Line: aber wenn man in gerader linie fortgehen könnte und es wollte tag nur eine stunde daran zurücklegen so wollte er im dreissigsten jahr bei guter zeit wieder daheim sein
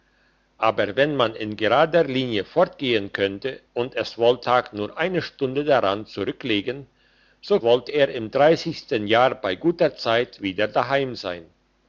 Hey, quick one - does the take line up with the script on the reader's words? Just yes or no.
yes